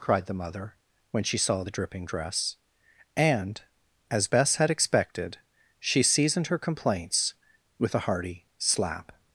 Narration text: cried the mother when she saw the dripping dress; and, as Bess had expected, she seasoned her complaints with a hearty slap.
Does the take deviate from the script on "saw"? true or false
false